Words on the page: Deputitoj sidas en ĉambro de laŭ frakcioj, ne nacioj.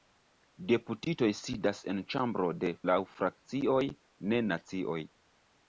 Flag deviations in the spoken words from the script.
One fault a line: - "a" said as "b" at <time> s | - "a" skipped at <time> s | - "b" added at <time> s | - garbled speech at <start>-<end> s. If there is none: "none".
none